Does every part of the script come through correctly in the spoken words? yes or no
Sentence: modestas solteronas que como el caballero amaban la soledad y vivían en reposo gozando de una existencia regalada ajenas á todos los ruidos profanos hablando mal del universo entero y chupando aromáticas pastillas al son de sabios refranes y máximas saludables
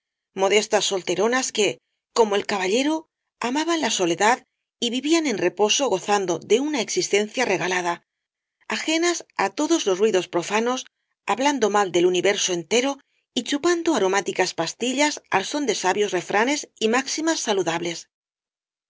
yes